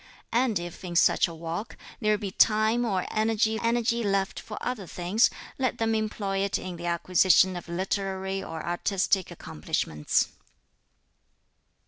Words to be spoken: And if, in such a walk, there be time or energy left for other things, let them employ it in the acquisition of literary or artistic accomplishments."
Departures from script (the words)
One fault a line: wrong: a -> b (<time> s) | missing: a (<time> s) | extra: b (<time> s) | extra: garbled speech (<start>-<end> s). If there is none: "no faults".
extra: energy (3.6 s)